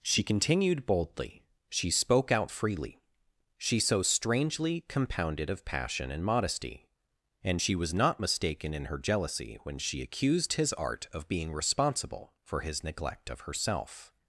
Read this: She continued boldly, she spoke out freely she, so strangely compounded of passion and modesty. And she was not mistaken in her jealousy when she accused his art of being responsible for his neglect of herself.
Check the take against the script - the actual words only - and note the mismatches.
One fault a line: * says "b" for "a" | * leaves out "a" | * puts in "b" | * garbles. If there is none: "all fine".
all fine